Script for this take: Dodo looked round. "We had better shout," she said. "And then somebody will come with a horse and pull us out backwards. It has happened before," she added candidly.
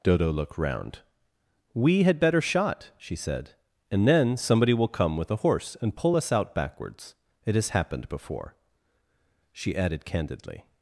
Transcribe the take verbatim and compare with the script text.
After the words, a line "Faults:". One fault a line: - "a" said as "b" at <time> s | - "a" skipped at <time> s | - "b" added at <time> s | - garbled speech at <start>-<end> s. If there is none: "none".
Dodo looked round. "We had better shot," she said. "And then somebody will come with a horse and pull us out backwards. It has happened before," she added candidly.
Faults:
- "shout" said as "shot" at 2.4 s